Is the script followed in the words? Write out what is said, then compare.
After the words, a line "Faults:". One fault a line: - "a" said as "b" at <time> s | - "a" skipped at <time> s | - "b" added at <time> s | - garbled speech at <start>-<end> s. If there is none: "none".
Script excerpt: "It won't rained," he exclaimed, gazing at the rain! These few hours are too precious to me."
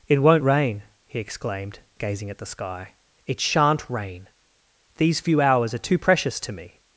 "It won't rain," he exclaimed, gazing at the sky. "It shan't rain! These few hours are too precious to me."
Faults:
- "rained" said as "rain" at 0.4 s
- "sky It shan't" added at 2.5 s